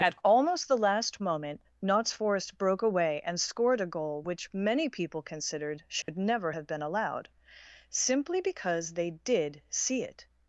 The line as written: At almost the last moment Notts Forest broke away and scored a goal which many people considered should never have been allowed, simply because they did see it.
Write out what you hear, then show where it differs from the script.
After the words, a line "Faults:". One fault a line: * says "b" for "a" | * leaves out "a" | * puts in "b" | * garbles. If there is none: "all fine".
At almost the last moment Notts Forest broke away and scored a goal which many people considered should never have been allowed, simply because they did see it.
Faults:
all fine